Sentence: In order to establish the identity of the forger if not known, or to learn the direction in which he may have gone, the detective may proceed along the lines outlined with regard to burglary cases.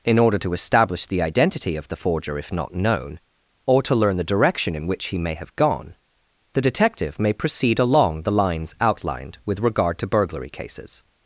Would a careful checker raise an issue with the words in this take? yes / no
no